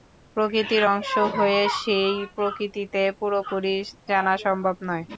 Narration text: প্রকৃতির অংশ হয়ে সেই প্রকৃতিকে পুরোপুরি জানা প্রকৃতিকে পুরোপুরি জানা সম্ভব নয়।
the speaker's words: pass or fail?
fail